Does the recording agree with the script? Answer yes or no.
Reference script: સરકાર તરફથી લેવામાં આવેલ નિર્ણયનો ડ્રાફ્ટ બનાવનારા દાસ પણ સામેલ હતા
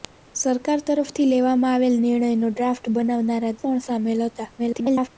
no